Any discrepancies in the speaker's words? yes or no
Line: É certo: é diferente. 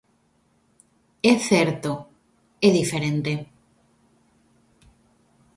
no